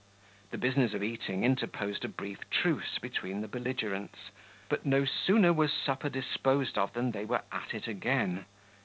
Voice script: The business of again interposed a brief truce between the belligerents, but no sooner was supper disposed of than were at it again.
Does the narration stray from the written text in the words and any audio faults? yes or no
yes